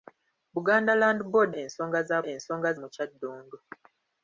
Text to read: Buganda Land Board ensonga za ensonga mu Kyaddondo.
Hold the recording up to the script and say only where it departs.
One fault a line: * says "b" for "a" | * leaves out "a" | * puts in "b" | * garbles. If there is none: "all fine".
all fine